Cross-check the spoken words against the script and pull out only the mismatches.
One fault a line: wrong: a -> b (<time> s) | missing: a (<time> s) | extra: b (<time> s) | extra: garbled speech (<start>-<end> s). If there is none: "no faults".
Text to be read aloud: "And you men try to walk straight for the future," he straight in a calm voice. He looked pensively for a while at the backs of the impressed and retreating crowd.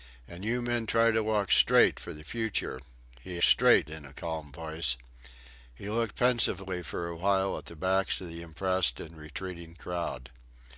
no faults